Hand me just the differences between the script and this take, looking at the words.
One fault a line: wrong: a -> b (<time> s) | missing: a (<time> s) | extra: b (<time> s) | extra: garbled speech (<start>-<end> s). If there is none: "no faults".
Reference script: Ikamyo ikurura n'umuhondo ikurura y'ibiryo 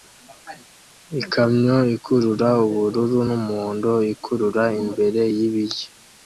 extra: ubururu (2.6 s)
extra: imbere (4.8 s)